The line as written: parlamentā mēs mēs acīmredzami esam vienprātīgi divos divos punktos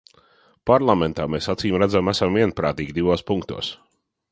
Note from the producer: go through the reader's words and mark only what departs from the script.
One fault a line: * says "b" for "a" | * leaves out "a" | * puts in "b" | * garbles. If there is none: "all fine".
* leaves out "mēs"
* leaves out "divos"